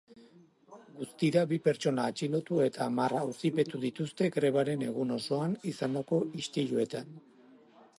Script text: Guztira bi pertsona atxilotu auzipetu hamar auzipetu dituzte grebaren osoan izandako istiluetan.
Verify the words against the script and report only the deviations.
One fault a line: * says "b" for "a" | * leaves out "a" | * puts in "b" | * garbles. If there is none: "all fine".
* says "eta" for "auzipetu"
* puts in "egun"